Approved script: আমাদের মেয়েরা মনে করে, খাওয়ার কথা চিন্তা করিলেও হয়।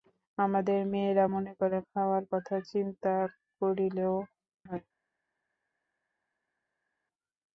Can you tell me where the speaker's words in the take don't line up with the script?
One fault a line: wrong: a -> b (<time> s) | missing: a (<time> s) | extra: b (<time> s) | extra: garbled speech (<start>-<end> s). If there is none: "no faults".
no faults